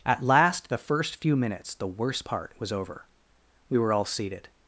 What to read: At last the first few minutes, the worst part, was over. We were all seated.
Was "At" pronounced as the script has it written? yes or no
yes